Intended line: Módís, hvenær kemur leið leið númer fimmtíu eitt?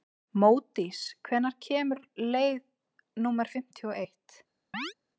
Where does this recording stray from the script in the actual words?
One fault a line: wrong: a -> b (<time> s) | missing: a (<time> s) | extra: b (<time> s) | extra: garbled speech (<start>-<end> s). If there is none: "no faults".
missing: leið (2.6 s)
extra: og (3.9 s)